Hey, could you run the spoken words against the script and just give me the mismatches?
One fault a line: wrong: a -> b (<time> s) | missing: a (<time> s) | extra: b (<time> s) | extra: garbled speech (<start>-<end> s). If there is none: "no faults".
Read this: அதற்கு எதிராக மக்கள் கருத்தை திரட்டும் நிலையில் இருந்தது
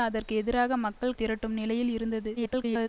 missing: கருத்தை (1.2 s)
extra: garbled speech (2.4-2.9 s)